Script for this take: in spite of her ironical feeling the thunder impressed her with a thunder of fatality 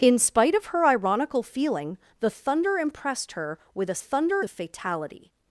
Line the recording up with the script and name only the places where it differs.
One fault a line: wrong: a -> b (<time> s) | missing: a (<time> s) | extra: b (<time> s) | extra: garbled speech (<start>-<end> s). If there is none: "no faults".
no faults